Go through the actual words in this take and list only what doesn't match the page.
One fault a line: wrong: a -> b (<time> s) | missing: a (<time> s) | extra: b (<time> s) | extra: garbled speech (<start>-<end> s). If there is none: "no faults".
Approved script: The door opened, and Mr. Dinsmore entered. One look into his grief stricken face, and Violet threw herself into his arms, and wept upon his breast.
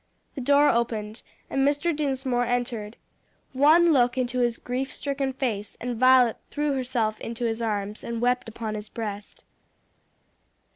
no faults